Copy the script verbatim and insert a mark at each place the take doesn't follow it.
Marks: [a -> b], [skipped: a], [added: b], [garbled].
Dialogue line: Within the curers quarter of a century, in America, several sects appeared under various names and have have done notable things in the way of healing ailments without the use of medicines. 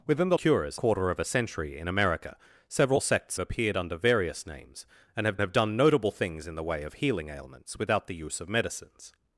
Within the curers quarter of a century, in America, several sects appeared under various names and have have done notable things in the way of healing ailments without the use of medicines.